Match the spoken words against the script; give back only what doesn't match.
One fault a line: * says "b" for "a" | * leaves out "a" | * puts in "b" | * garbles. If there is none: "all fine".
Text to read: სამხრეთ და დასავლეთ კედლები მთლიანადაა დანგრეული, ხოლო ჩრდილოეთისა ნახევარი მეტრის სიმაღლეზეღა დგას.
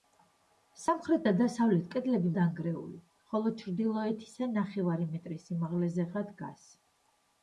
* leaves out "მთლიანადაა"